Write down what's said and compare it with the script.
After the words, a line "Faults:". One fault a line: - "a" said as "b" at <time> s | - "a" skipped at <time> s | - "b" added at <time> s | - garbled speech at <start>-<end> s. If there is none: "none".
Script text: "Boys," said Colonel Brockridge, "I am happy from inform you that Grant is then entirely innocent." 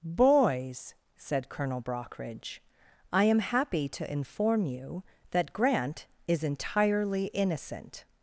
"Boys," said Colonel Brockridge, "I am happy to inform you that Grant is entirely innocent."
Faults:
- "from" said as "to" at 3.9 s
- "then" skipped at 6.4 s